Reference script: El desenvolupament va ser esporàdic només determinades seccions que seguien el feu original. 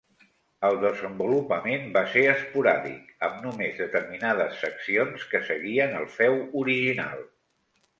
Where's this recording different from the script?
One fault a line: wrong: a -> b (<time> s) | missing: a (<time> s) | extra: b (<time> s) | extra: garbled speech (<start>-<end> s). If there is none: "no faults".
extra: amb (3.3 s)